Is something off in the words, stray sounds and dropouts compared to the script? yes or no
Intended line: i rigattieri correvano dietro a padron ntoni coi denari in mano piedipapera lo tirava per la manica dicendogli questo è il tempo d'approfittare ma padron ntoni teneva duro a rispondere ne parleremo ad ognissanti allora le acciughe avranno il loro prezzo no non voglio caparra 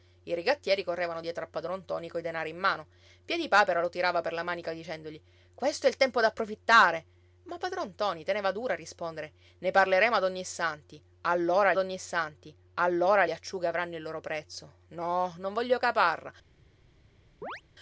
yes